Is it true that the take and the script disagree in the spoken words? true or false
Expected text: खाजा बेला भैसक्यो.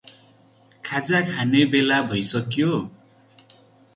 true